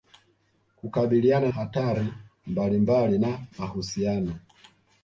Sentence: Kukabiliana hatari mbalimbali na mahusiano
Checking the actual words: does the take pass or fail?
pass